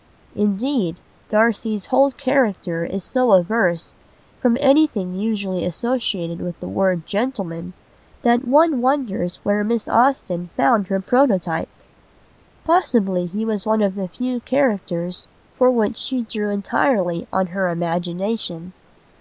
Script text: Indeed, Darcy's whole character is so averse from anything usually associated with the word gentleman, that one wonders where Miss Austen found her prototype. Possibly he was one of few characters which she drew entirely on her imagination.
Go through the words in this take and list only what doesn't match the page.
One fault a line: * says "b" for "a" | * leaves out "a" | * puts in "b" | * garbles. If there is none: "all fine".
* puts in "the"
* puts in "for"